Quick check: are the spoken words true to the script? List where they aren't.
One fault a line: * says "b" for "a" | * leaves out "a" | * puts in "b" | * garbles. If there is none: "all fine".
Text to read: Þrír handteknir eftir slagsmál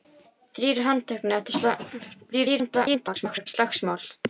* garbles